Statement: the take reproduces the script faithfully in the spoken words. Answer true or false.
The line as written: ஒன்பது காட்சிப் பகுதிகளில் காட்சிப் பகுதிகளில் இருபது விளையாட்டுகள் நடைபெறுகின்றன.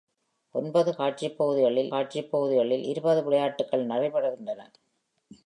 true